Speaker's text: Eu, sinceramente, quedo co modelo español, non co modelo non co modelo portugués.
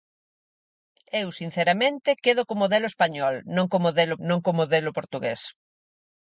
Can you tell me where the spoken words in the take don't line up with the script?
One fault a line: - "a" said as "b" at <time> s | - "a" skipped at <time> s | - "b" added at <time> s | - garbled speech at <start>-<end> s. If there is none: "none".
none